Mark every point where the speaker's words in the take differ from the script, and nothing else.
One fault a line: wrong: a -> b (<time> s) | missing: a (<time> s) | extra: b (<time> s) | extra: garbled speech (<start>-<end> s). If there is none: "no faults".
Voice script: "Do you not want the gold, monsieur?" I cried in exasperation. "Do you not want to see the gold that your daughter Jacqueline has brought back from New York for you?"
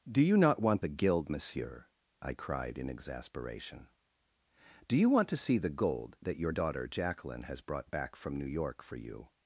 wrong: gold -> guild (0.9 s)
missing: not (5.1 s)